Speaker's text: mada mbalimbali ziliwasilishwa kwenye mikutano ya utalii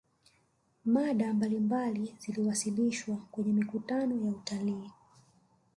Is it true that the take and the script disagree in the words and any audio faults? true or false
false